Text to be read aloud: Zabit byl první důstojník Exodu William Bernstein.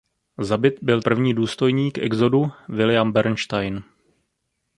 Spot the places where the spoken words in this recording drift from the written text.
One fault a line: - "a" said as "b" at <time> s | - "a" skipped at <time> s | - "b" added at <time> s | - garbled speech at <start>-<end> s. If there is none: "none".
none